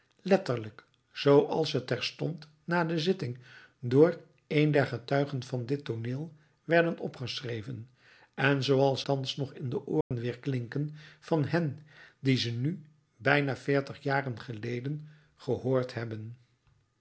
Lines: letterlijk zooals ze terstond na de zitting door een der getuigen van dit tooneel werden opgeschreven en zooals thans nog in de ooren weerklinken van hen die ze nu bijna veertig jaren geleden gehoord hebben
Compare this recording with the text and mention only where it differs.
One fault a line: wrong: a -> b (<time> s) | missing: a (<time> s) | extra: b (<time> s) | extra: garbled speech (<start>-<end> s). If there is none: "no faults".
no faults